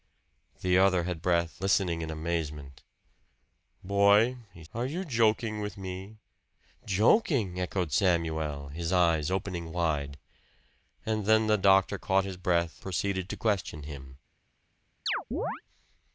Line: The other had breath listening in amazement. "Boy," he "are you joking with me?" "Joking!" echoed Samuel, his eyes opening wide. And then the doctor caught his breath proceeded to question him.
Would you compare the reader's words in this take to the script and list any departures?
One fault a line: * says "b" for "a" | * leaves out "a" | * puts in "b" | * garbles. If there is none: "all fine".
all fine